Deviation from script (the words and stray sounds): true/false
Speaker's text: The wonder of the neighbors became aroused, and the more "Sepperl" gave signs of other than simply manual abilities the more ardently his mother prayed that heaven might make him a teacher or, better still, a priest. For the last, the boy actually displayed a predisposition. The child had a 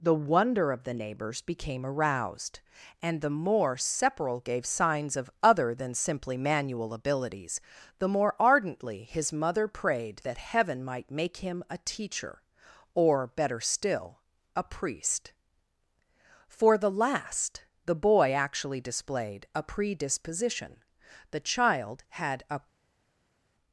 false